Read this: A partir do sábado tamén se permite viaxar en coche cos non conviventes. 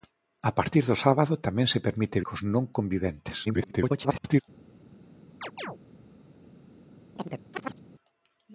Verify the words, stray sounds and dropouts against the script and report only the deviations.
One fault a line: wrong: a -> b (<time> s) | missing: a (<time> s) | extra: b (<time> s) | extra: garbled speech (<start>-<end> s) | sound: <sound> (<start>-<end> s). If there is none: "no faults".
missing: viaxar en coche (2.2 s)
extra: garbled speech (3.5-4.4 s)
sound: chirp (5.4-5.8 s)
sound: chirp (7.2-7.8 s)